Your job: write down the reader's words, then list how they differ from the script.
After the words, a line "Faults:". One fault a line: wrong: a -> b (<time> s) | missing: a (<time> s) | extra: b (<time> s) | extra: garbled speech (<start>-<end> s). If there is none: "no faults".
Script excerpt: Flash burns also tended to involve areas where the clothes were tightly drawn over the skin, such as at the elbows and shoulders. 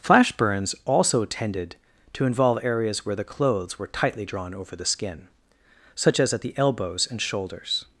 Flash burns also tended to involve areas where the clothes were tightly drawn over the skin, such as at the elbows and shoulders.
Faults:
no faults